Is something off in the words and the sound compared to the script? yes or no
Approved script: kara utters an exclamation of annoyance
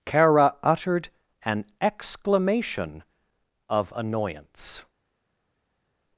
yes